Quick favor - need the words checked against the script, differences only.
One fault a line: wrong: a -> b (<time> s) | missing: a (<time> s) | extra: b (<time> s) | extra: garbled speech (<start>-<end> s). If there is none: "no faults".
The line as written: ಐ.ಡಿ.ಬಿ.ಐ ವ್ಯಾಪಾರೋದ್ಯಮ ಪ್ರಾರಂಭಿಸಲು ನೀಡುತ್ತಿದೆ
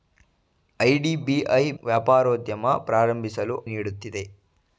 no faults